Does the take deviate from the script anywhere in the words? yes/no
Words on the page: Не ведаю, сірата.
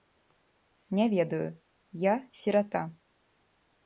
yes